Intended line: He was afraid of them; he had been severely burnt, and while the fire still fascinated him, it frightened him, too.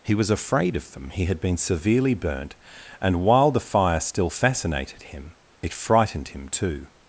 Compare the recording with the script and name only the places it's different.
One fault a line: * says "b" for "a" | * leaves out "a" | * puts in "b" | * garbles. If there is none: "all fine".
all fine